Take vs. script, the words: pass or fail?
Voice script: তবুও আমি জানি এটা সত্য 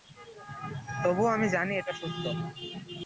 pass